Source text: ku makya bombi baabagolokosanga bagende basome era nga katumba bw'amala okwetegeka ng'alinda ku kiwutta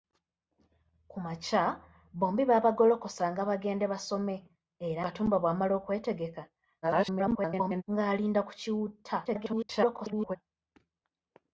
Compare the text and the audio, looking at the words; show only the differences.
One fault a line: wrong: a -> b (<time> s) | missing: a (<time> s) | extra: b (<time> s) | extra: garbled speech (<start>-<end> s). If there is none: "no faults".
missing: nga (5.0 s)
extra: garbled speech (6.8-7.8 s)
extra: garbled speech (9.2-10.4 s)